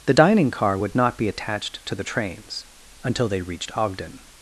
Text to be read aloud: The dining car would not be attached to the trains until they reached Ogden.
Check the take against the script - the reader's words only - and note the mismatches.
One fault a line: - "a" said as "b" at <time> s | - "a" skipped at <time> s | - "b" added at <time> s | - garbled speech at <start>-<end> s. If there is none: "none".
none